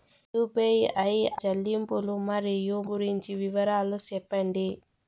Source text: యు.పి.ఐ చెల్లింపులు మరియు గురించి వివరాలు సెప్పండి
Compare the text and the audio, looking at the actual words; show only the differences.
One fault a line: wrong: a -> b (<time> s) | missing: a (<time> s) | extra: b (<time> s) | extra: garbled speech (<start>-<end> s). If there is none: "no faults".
no faults